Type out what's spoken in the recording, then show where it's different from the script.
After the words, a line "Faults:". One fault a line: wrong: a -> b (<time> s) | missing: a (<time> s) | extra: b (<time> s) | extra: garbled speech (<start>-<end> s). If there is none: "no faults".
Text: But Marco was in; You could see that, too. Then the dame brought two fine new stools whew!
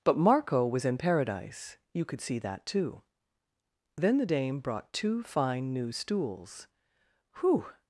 But Marco was in Paradise; you could see that, too. Then the dame brought two fine new stools whew!
Faults:
extra: Paradise (1.0 s)